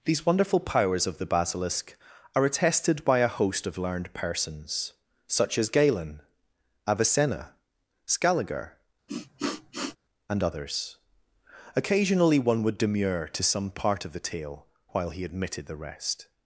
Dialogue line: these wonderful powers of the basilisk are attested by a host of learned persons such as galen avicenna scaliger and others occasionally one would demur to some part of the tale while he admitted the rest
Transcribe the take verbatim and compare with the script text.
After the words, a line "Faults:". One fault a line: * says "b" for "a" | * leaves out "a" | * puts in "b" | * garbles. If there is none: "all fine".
these wonderful powers of the basilisk are attested by a host of learned persons such as galen avicenna scaliger and others occasionally one would demur to some part of the tale while he admitted the rest
Faults:
all fine